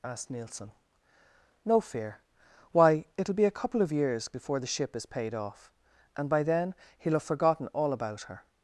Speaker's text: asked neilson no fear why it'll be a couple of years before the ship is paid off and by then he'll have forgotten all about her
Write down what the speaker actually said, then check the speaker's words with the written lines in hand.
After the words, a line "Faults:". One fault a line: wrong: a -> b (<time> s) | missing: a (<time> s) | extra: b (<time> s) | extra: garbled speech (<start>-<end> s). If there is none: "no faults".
asked neilson no fear why it'll be a couple of years before the ship is paid off and by then he'll have forgotten all about her
Faults:
no faults